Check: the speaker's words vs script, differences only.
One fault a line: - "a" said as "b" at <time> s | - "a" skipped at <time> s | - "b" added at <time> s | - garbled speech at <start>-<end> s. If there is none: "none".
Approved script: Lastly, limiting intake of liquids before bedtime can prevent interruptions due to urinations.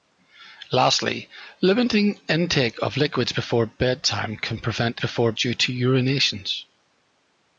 - "interruptions" said as "before" at 5.0 s